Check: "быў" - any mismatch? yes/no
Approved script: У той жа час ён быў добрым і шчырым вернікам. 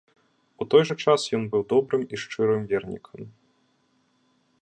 no